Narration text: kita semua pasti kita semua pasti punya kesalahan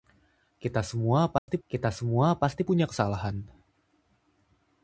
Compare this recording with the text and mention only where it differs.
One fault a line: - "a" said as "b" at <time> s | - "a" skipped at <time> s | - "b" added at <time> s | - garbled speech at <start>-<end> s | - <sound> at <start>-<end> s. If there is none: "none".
- dropout at 1.4-1.5 s